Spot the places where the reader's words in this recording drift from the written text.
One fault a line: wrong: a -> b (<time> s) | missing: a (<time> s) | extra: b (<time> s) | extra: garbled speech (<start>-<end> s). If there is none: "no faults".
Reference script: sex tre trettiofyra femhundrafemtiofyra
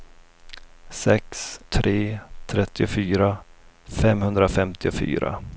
no faults